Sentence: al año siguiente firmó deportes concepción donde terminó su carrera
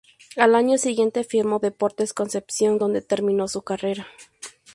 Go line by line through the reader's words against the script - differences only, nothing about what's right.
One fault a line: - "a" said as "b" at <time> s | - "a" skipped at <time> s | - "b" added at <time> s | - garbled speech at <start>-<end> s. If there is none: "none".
none